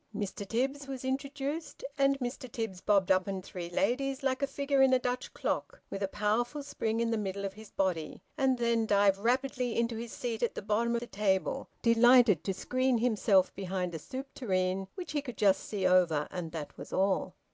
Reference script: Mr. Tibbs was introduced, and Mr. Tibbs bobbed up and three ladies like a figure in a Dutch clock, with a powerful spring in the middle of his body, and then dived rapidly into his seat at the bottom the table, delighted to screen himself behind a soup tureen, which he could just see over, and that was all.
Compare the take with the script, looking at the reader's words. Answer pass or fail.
pass